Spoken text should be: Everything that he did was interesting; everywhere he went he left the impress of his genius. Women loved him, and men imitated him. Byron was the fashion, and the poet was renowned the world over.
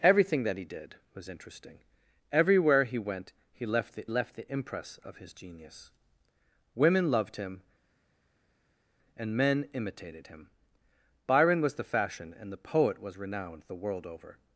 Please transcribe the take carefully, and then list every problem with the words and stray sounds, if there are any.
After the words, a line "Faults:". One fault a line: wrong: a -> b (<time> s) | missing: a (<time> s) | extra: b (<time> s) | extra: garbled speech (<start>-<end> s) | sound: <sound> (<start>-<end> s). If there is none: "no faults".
Everything that he did was interesting; everywhere he went he left the left the impress of his genius. Women loved him, and men imitated him. Byron was the fashion, and the poet was renowned the world over.
Faults:
extra: left the (4.1 s)